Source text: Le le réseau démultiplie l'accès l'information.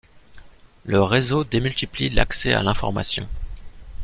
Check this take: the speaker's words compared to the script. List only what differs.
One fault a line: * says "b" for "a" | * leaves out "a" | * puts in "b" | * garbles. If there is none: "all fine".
* leaves out "le"
* puts in "à"